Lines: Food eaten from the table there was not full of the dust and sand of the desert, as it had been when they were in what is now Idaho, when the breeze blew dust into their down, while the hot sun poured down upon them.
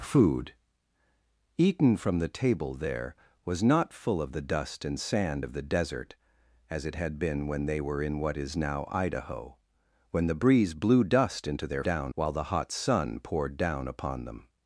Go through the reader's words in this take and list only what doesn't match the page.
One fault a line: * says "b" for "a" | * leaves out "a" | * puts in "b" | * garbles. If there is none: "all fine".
all fine